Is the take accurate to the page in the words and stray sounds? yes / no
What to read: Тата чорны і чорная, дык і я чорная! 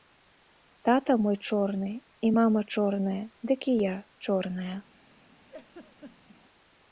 no